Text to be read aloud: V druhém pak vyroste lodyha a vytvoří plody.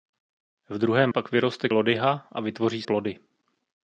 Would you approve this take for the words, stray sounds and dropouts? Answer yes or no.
yes